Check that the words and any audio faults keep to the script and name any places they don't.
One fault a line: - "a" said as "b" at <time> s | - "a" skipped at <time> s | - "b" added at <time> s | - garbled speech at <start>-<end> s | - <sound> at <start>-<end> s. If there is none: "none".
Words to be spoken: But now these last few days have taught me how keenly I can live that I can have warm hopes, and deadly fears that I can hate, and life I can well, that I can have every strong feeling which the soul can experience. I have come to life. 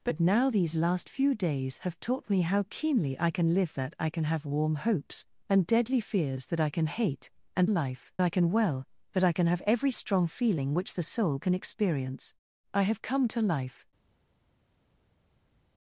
none